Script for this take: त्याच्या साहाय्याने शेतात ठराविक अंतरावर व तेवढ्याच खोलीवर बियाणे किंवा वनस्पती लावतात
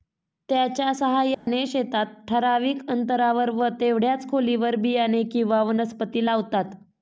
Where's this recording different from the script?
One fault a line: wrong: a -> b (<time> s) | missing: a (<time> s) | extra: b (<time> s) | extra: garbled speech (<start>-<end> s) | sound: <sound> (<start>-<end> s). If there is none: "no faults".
sound: dropout (1.3-1.5 s)